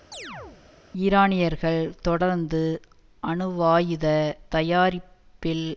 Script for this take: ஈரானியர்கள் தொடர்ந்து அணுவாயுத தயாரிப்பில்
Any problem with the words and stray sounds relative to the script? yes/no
yes